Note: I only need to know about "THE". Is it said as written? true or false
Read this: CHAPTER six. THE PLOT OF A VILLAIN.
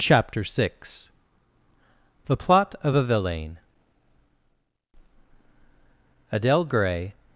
true